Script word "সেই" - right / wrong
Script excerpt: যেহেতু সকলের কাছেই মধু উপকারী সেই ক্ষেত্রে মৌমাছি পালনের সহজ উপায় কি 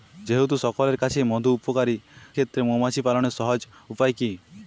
wrong